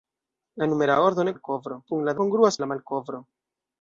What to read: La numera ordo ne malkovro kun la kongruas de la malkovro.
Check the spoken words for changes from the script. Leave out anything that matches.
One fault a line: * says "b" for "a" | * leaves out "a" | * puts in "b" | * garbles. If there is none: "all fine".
all fine